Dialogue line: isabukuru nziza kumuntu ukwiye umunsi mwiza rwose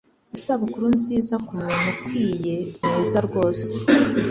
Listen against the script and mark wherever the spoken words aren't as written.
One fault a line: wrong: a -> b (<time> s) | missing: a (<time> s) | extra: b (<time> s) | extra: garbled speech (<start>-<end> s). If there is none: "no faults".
missing: umunsi (2.6 s)